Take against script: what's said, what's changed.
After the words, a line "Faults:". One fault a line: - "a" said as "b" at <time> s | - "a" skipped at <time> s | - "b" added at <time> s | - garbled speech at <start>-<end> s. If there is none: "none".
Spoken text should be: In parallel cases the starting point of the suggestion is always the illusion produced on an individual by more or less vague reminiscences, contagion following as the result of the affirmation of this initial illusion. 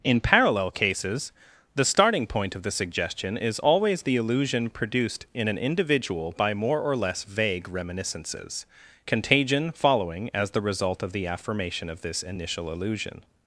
In parallel cases the starting point of the suggestion is always the illusion produced in an individual by more or less vague reminiscences, contagion following as the result of the affirmation of this initial illusion.
Faults:
- "on" said as "in" at 5.3 s